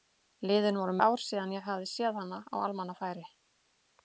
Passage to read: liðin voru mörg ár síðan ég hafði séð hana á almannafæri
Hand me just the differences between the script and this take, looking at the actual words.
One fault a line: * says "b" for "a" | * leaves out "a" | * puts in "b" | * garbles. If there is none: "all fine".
* leaves out "mörg"